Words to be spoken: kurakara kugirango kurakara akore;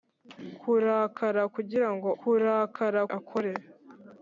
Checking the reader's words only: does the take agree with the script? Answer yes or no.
yes